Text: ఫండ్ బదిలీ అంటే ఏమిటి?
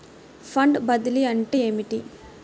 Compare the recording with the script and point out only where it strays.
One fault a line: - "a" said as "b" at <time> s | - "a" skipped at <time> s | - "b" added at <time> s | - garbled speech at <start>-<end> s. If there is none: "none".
none